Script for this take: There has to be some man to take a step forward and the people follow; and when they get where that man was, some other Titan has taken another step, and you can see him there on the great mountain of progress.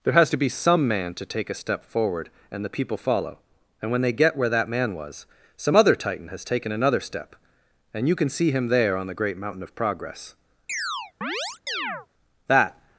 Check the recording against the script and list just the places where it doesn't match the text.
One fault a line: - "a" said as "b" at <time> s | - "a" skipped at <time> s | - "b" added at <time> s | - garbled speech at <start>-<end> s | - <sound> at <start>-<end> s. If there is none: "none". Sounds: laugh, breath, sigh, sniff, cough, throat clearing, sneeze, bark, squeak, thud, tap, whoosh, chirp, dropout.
- chirp at 10.7-12.1 s
- "That" added at 12.5 s